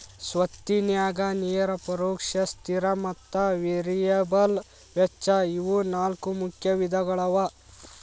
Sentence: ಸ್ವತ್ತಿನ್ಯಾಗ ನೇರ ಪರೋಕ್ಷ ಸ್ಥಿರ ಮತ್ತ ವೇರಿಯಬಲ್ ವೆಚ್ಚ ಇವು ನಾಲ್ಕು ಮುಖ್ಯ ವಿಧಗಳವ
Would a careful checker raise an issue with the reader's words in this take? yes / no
no